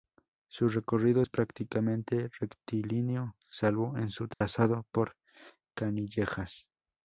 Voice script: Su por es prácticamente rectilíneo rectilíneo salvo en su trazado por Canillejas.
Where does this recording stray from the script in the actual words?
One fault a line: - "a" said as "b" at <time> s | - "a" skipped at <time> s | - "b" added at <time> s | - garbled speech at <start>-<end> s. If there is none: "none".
- "por" said as "recorrido" at 0.7 s
- "rectilíneo" skipped at 3.3 s